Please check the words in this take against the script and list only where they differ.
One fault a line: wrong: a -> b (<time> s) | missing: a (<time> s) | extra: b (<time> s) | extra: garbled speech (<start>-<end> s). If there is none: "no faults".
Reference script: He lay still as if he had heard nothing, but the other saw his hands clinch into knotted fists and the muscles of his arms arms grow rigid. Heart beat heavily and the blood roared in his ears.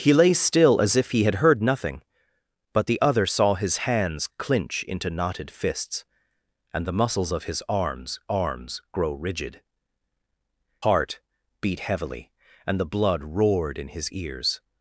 no faults